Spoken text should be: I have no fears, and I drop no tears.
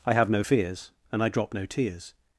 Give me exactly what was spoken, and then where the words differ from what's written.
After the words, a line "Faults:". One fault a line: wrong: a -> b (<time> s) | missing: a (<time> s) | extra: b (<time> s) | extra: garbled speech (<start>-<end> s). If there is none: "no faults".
I have no fears, and I drop no tears.
Faults:
no faults